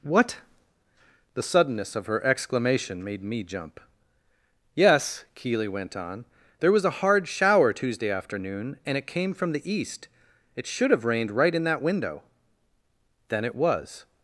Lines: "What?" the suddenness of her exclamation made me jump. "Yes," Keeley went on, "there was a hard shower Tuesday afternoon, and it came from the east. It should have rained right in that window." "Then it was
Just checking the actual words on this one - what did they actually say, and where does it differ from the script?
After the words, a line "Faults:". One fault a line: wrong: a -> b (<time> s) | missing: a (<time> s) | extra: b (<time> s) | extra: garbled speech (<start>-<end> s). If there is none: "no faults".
"What?" the suddenness of her exclamation made me jump. "Yes," Keeley went on, "there was a hard shower Tuesday afternoon, and it came from the east. It should have rained right in that window." "Then it was
Faults:
no faults